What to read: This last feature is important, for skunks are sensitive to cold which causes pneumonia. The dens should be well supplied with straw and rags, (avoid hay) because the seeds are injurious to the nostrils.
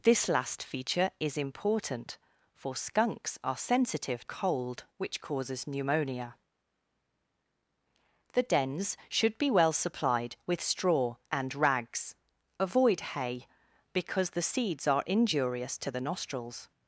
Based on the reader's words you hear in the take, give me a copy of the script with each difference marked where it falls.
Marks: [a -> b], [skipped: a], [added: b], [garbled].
This last feature is important, for skunks are sensitive [skipped: to] cold which causes pneumonia. The dens should be well supplied with straw and rags, (avoid hay) because the seeds are injurious to the nostrils.